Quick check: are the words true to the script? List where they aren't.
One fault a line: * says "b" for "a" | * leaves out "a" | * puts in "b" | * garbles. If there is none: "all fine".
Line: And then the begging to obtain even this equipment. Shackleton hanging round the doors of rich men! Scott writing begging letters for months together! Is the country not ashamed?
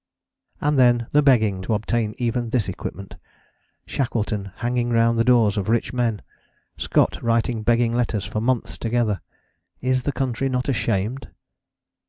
all fine